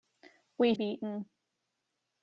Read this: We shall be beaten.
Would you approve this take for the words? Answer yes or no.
no